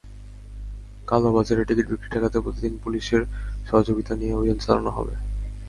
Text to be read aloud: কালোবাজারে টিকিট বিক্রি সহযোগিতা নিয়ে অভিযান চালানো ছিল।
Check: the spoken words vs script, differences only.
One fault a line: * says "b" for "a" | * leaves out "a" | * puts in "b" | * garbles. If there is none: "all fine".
* puts in "ঠেকাতে প্রতিদিন পুলিশের"
* says "হবে" for "ছিল"